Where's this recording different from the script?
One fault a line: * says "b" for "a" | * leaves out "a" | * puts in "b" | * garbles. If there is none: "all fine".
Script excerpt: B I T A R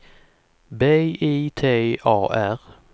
all fine